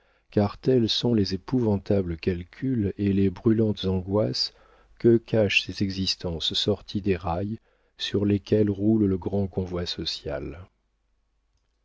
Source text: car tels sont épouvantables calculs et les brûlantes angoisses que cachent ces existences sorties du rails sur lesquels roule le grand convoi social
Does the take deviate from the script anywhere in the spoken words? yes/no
yes